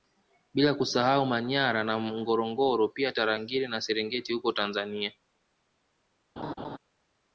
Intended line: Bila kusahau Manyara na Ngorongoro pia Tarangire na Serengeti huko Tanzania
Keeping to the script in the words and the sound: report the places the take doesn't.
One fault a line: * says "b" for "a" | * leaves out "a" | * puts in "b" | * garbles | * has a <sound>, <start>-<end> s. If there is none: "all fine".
* has a laugh, 6.4-6.8 s